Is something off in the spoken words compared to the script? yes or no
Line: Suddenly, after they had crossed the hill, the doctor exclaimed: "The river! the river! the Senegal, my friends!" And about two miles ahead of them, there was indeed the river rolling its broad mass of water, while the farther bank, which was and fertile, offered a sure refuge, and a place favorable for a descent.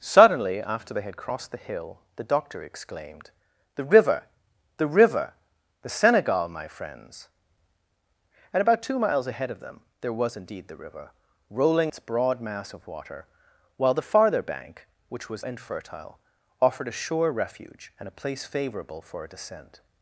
no